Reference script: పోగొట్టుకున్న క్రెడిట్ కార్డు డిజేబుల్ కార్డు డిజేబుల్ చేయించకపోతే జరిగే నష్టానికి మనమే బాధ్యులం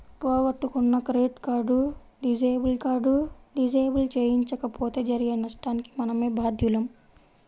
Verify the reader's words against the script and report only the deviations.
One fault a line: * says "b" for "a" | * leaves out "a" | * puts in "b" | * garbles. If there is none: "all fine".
all fine